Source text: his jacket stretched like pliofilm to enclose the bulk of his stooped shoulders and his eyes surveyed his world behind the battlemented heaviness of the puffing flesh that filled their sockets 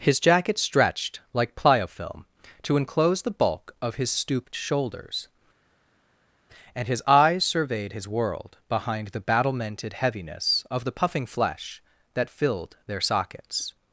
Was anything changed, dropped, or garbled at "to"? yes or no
no